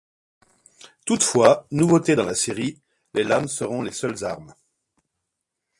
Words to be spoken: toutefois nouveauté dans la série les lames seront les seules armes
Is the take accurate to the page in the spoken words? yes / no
yes